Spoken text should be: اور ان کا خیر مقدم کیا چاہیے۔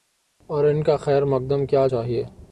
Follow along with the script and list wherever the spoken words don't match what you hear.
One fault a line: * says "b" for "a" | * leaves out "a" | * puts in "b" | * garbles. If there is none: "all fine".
all fine